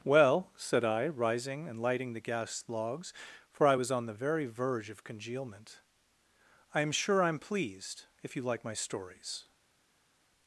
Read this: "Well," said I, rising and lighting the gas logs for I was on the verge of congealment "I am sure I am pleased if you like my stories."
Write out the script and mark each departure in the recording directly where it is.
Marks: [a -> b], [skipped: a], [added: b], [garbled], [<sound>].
"Well," said I, rising and lighting the gas logs for I was on the [added: very] verge of congealment "I am sure I am pleased if you like my stories."